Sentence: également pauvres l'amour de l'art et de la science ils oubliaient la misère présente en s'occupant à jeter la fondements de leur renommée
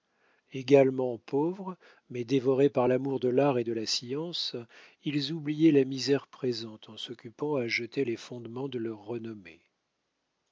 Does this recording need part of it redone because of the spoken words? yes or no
yes